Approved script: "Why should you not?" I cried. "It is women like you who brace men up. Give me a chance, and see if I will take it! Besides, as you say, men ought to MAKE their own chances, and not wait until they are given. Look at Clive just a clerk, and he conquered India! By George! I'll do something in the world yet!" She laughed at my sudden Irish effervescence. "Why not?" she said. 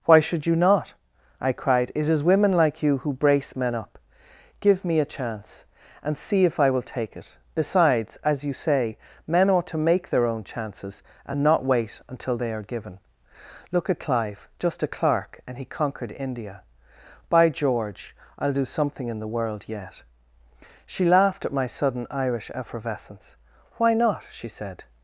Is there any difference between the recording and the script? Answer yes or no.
no